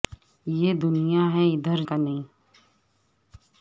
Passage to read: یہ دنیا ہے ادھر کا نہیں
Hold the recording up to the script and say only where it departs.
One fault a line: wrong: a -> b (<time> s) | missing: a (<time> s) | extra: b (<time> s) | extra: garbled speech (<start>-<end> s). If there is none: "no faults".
no faults